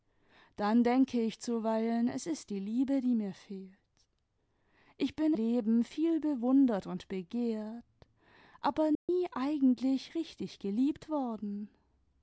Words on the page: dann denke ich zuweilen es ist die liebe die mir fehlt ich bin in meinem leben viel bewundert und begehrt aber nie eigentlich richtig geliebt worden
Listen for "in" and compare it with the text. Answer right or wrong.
wrong